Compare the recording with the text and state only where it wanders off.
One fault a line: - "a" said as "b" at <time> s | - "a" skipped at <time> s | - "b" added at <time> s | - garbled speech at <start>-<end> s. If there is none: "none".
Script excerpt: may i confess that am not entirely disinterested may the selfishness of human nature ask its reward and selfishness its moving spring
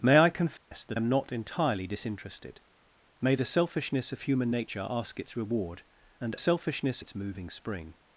none